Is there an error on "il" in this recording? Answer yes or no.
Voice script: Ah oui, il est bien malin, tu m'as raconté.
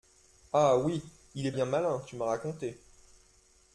no